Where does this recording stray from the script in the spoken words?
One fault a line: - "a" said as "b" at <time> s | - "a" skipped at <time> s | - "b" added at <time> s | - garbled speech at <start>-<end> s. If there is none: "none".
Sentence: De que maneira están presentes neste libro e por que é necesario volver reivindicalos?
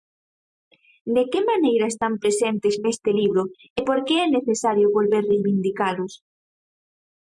none